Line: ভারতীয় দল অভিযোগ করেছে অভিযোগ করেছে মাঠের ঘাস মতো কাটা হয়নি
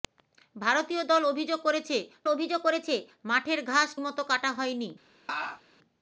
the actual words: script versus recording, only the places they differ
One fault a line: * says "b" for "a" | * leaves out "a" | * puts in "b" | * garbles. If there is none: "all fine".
all fine